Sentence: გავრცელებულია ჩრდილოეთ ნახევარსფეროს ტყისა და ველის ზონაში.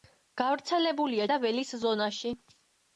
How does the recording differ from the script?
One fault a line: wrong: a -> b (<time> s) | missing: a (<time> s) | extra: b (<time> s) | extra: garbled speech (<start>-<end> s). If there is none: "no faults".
missing: ჩრდილოეთ ნახევარსფეროს ტყისა (1.3 s)